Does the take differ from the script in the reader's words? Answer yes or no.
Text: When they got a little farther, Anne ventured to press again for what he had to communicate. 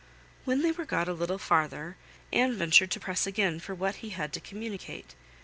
yes